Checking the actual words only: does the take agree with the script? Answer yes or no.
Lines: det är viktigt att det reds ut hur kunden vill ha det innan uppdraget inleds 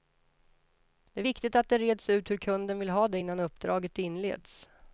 yes